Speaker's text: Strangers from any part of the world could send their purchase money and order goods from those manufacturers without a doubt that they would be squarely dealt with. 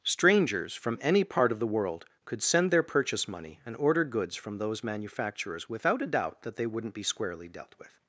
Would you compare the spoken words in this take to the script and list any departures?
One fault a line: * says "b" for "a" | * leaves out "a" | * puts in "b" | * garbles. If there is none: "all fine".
* says "wouldn't" for "would"